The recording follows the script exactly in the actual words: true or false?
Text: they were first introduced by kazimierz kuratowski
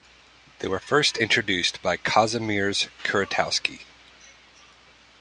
true